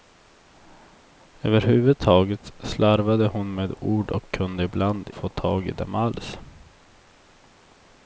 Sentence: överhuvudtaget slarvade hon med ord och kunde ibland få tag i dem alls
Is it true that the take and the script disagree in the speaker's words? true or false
false